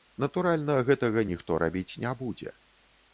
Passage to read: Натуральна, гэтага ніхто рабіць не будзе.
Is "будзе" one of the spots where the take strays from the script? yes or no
no